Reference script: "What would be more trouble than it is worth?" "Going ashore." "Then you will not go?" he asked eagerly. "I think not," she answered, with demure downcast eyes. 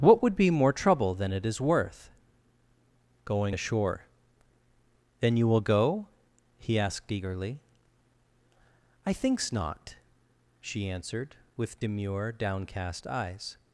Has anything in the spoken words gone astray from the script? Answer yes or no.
yes